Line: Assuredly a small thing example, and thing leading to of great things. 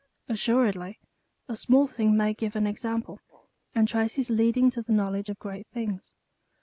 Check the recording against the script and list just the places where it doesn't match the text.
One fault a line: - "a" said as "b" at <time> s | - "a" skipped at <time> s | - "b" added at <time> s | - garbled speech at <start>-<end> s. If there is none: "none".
- "may give an" added at 2.2 s
- "thing" said as "traces" at 3.9 s
- "the knowledge" added at 4.8 s